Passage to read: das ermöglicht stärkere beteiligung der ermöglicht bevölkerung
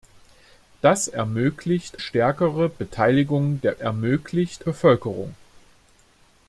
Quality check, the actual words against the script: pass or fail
pass